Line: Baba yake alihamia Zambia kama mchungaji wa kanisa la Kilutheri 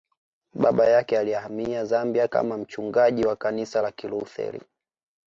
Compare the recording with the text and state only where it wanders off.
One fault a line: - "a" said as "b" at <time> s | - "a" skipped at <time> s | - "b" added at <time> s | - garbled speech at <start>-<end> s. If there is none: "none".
none